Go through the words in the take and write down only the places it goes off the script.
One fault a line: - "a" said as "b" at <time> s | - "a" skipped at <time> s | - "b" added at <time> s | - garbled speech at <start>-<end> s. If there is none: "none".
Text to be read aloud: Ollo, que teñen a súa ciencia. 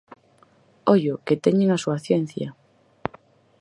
none